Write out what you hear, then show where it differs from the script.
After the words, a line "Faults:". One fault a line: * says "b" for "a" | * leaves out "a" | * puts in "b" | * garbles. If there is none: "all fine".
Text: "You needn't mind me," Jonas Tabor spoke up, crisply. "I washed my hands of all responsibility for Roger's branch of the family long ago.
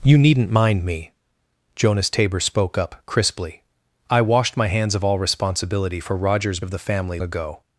"You needn't mind me," Jonas Tabor spoke up, crisply. "I washed my hands of all responsibility for Roger's of the family ago.
Faults:
* leaves out "branch"
* leaves out "long"